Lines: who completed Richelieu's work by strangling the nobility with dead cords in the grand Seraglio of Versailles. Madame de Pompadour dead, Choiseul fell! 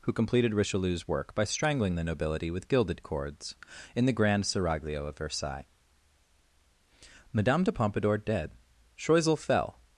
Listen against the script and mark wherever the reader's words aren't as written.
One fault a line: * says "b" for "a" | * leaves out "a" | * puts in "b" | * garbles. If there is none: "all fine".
* says "gilded" for "dead"